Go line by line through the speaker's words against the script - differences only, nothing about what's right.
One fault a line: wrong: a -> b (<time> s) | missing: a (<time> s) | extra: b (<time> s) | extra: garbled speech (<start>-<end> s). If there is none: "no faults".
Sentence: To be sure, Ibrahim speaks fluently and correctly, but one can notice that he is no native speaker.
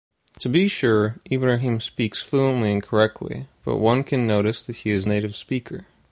missing: no (5.1 s)